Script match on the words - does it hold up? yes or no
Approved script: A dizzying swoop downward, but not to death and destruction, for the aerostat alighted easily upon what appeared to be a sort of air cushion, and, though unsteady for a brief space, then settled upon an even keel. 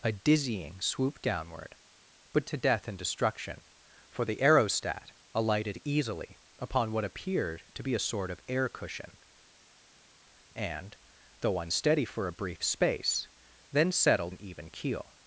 no